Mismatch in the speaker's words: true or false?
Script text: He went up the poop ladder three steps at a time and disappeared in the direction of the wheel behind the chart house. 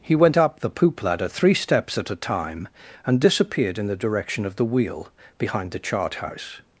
false